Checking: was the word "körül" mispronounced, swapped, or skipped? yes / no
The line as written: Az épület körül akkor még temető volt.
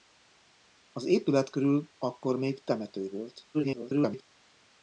no